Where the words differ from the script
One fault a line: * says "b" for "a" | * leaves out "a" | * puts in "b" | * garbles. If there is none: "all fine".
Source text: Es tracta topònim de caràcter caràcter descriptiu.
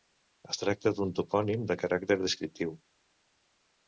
* puts in "d'un"
* leaves out "caràcter"